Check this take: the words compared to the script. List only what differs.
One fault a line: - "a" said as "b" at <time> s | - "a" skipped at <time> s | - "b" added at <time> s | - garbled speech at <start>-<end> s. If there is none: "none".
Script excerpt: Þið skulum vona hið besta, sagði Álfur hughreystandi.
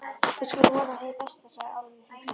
- "Þið" said as "Við" at 0.0 s